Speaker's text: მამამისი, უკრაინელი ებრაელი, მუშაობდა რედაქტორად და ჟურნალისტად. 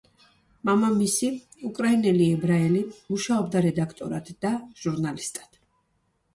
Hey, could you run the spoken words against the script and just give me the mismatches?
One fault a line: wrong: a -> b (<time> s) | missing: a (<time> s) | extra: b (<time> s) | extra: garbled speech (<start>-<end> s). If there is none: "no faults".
no faults